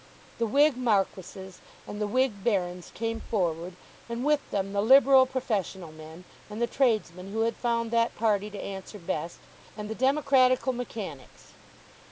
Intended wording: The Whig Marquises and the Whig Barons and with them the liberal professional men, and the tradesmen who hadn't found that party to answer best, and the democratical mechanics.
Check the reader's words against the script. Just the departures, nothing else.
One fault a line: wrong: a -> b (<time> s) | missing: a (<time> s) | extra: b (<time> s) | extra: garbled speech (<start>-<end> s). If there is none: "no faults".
extra: came forward (2.9 s)
wrong: hadn't -> had (7.4 s)